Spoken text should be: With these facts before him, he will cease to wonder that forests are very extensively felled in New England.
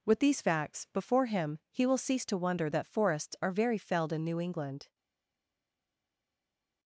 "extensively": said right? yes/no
no